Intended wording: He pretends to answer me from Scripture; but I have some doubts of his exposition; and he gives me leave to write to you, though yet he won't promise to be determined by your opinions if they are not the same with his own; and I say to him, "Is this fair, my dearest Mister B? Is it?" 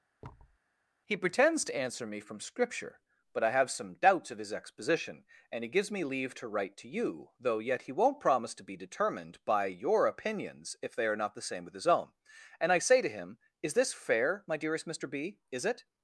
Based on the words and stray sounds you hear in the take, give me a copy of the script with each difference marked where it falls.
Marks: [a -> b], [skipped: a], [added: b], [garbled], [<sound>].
[thud] He pretends to answer me from Scripture; but I have some doubts of his exposition; and he gives me leave to write to you, though yet he won't promise to be determined by your opinions if they are not the same with his own; and I say to him, "Is this fair, my dearest Mister B? Is it?"